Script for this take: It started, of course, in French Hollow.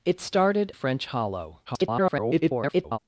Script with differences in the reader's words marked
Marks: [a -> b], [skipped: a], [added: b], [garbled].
It started, [skipped: of course, in] French Hollow. [garbled]